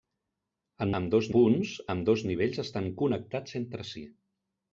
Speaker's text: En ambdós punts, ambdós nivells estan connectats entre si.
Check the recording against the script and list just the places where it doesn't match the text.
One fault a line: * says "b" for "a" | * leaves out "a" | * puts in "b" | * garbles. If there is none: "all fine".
all fine